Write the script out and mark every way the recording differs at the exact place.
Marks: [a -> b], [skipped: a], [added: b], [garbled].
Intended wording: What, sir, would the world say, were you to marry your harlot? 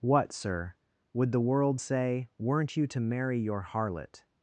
What, sir, would the world say, [were -> weren't] you to marry your harlot?